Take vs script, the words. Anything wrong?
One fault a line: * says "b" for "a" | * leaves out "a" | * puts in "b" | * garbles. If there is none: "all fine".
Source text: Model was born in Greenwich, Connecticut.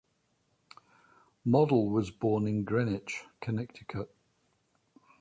all fine